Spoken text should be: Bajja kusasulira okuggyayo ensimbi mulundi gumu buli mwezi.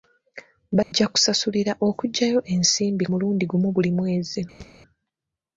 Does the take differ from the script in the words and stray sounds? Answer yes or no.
yes